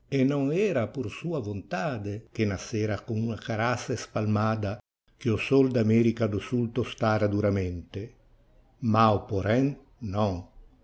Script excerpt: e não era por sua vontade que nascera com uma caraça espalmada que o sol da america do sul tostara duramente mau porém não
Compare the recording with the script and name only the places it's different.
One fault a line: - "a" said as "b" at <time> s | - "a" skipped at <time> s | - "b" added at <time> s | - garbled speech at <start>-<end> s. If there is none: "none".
none